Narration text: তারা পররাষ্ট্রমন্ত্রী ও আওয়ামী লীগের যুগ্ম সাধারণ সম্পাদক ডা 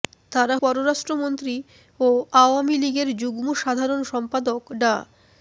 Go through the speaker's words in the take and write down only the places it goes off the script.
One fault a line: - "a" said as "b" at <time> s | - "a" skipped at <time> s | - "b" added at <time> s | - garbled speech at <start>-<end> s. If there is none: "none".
none